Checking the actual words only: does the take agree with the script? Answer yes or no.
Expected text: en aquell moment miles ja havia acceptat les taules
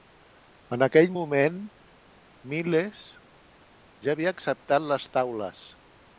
yes